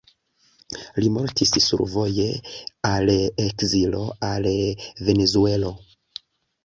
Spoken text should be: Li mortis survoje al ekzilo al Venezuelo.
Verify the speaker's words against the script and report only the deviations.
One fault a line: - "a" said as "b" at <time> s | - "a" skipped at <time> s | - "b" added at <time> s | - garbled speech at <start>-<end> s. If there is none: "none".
none